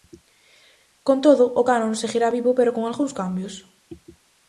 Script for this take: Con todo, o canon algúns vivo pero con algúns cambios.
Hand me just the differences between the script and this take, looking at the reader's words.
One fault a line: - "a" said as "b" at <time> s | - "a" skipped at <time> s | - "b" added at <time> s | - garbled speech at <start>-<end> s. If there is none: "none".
- "algúns" said as "seguirá" at 2.0 s